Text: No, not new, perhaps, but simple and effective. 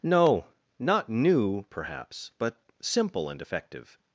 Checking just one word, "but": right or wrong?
right